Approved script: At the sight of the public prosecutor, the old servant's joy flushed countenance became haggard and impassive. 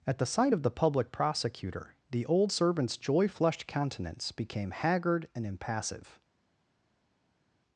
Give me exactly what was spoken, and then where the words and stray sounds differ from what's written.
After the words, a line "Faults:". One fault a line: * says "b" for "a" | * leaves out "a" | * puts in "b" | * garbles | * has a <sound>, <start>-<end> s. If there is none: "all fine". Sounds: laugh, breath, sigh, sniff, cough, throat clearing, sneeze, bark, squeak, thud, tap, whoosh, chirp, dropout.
At the sight of the public prosecutor, the old servant's joy flushed countenance became haggard and impassive.
Faults:
all fine